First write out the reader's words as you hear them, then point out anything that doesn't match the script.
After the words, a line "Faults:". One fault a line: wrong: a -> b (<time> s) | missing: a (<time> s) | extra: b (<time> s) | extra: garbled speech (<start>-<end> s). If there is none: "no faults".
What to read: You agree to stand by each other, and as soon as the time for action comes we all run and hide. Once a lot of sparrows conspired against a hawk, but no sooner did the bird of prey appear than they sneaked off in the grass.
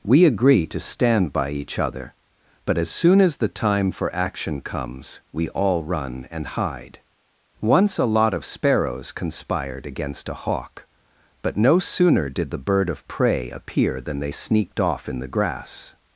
We agree to stand by each other, but as soon as the time for action comes we all run and hide. Once a lot of sparrows conspired against a hawk, but no sooner did the bird of prey appear than they sneaked off in the grass.
Faults:
wrong: You -> We (0.0 s)
wrong: and -> but (2.6 s)